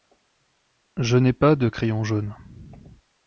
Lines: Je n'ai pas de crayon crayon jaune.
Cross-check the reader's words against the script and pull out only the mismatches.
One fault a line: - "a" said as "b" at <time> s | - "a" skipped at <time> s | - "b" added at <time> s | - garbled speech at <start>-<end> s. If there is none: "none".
- "crayon" skipped at 2.1 s